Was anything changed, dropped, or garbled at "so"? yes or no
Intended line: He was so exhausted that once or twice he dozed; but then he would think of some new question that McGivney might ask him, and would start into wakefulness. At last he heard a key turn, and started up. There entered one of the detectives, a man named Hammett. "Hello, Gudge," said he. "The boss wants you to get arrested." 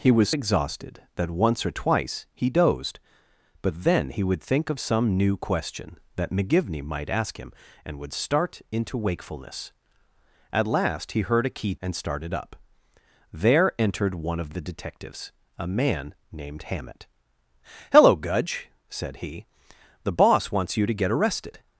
yes